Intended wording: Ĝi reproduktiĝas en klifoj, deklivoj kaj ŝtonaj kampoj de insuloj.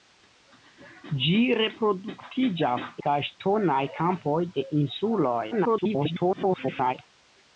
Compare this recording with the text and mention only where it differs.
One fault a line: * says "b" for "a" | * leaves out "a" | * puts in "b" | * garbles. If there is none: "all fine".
* leaves out "en klifoj deklivoj"
* garbles